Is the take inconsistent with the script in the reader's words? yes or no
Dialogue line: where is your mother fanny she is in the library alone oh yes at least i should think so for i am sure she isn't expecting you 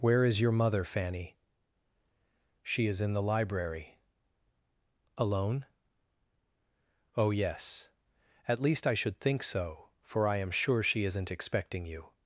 no